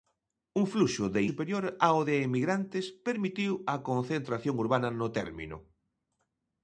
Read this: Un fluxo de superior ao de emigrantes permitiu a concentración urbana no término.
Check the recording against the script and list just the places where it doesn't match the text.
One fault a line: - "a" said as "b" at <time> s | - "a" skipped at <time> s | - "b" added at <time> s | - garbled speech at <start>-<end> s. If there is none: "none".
none